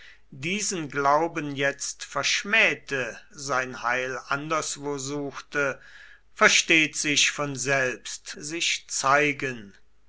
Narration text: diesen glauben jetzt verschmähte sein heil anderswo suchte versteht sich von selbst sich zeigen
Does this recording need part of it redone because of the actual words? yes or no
no